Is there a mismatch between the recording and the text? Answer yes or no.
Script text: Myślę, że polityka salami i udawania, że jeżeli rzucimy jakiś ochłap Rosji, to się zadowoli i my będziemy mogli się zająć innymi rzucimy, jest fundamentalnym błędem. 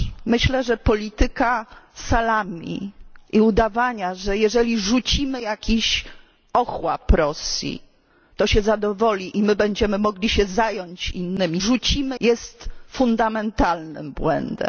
no